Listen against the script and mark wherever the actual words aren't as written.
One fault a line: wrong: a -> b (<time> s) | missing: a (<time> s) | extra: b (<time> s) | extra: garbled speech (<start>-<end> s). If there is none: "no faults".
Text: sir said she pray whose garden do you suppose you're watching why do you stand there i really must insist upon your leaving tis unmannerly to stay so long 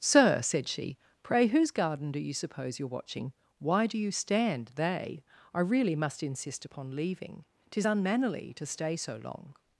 wrong: there -> they (4.8 s)
missing: your (6.9 s)